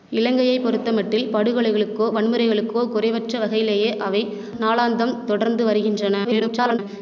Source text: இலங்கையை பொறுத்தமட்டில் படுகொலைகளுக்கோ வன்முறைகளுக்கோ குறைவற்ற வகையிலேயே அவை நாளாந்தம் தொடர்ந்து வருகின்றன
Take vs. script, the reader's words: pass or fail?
fail